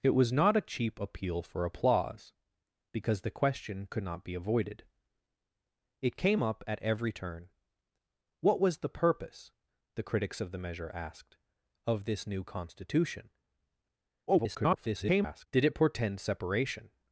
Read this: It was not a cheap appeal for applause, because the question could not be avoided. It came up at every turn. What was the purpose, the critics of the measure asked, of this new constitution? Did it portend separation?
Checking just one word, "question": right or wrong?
right